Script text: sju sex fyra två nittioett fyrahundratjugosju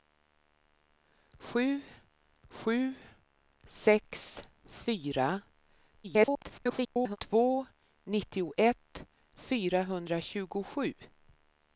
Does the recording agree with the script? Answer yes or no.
no